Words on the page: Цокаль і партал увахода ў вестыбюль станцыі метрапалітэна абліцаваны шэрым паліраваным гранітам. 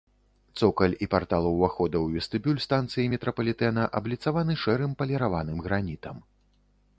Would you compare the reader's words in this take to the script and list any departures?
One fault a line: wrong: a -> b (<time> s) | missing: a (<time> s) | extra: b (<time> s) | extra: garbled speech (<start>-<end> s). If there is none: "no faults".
no faults